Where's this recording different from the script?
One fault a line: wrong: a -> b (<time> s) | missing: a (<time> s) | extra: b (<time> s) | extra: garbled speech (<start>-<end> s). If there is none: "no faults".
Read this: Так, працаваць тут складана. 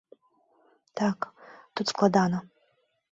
missing: працаваць (1.3 s)